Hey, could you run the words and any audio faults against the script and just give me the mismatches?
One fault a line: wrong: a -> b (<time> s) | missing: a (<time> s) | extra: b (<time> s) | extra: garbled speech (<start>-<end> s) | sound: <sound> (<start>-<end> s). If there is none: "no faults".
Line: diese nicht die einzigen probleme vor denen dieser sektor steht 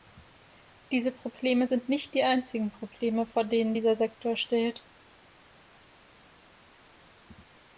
extra: probleme sind (1.1 s)